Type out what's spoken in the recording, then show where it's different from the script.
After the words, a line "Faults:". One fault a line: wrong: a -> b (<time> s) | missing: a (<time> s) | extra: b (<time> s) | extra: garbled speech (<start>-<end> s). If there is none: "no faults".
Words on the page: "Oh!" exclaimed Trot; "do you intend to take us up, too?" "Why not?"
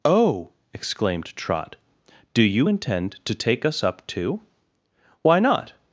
"Oh!" exclaimed Trot; "do you intend to take us up, too?" "Why not?"
Faults:
no faults